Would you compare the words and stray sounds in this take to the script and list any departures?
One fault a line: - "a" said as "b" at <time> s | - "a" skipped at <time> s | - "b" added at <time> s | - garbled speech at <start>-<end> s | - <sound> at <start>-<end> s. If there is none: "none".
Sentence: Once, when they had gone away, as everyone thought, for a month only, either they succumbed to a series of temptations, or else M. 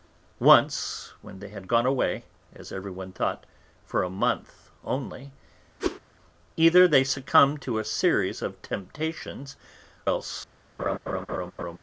- whoosh at 5.8-6.0 s
- "or" skipped at 9.5 s
- laugh at 10.8-11.8 s